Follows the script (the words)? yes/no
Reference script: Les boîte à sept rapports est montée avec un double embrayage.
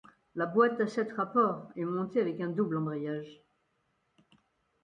no